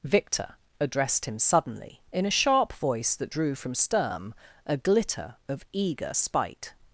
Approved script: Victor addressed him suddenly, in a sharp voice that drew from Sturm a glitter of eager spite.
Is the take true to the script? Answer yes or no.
yes